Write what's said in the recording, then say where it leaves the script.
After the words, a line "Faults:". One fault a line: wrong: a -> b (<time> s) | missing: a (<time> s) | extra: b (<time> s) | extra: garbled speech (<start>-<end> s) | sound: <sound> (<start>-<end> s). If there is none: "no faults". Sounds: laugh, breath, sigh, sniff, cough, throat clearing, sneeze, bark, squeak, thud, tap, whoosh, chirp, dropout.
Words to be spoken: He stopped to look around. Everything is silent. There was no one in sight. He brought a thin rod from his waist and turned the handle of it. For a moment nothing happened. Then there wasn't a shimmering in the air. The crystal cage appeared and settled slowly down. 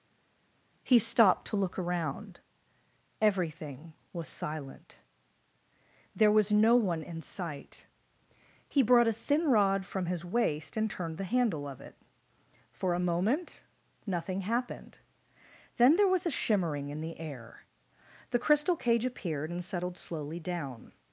He stopped to look around. Everything was silent. There was no one in sight. He brought a thin rod from his waist and turned the handle of it. For a moment nothing happened. Then there was a shimmering in the air. The crystal cage appeared and settled slowly down.
Faults:
wrong: is -> was (4.1 s)
wrong: wasn't -> was (16.1 s)